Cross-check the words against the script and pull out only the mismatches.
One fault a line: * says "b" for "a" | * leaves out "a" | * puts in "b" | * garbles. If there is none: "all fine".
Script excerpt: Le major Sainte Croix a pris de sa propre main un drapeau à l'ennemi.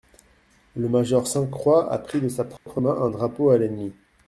all fine